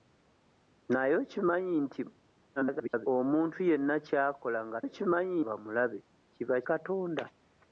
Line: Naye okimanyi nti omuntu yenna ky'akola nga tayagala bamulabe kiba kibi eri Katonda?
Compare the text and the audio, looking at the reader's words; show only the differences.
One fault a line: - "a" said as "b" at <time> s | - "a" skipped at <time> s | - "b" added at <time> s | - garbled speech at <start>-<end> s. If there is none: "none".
- garbled speech at 2.6-3.1 s
- "tayagala" said as "okimanyi" at 4.8 s
- "kibi eri" skipped at 6.6 s